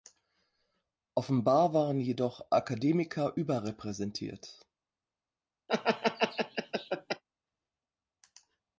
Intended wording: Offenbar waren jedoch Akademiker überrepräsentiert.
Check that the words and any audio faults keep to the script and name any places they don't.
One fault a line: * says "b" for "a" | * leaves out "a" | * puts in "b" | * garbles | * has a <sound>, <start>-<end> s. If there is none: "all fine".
* has a laugh, 5.7-7.2 s